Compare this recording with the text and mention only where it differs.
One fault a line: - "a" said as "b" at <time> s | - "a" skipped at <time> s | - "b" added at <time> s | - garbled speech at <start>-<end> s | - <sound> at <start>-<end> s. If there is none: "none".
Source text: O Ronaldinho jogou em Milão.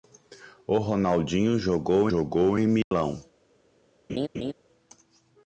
- "jogou" added at 2.0 s
- dropout at 2.8-2.9 s
- laugh at 4.1-4.5 s